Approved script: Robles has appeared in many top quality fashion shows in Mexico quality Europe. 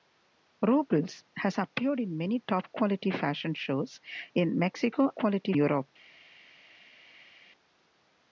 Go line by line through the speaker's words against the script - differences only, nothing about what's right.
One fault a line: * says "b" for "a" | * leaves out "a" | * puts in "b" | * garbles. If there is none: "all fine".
all fine